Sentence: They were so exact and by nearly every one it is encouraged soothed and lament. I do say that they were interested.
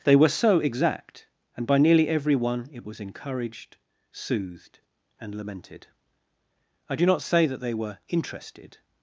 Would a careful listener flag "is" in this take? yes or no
yes